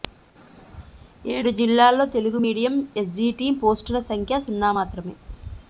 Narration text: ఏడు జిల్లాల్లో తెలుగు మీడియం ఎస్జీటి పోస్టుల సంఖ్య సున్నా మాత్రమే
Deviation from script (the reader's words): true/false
false